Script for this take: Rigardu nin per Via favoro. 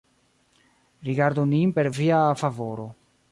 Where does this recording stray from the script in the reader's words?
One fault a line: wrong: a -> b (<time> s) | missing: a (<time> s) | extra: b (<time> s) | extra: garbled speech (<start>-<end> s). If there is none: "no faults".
no faults